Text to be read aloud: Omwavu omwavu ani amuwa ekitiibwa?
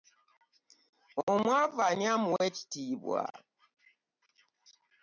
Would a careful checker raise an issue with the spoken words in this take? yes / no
yes